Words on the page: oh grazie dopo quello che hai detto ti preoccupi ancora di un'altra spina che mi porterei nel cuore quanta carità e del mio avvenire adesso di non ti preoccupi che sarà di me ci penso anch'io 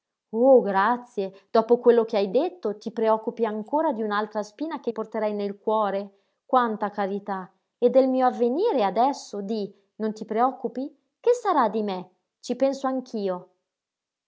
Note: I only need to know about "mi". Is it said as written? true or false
false